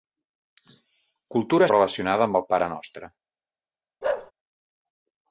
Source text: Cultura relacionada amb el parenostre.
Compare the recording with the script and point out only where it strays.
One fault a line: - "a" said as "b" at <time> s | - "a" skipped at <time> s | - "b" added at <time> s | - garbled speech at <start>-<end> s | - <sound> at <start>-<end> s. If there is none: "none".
- bark at 4.0-4.3 s